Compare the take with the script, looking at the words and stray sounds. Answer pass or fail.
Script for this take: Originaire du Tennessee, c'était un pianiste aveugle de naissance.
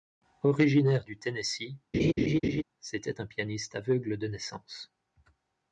fail